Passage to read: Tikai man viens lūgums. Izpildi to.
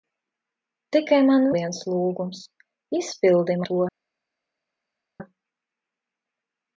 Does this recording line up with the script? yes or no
yes